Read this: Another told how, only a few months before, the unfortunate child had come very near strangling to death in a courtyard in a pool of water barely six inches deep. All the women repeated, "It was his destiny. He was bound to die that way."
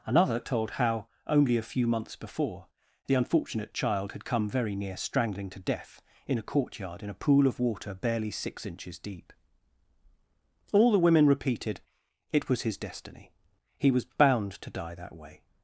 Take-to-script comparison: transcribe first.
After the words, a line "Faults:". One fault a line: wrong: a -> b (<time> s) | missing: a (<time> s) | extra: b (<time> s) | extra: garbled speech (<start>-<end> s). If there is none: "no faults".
Another told how, only a few months before, the unfortunate child had come very near strangling to death in a courtyard in a pool of water barely six inches deep. All the women repeated, "It was his destiny. He was bound to die that way."
Faults:
no faults